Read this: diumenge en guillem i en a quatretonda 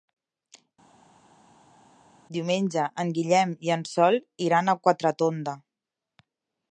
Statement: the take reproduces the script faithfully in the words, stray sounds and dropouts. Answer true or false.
false